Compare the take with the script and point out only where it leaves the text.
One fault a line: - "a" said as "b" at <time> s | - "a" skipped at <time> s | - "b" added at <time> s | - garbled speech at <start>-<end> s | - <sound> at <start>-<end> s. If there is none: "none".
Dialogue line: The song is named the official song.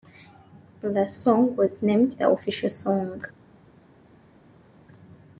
- "is" said as "was" at 1.6 s